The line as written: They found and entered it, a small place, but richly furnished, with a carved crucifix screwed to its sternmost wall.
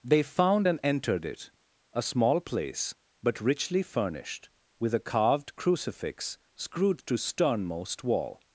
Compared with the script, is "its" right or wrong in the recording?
wrong